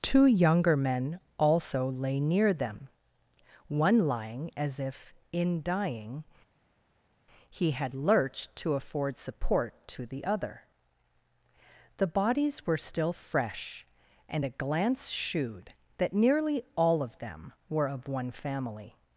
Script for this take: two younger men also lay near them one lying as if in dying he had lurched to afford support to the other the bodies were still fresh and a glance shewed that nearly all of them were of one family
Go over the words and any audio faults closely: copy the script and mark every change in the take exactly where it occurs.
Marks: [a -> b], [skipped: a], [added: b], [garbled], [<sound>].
two younger men also lay near them one lying as if in dying he had lurched to afford support to the other the bodies were still fresh and a glance shewed that nearly all of them were of one family